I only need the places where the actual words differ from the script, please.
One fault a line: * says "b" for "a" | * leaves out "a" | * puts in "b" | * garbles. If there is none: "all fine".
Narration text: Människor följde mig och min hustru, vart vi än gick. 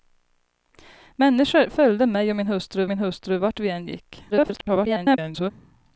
* puts in "min hustru"
* garbles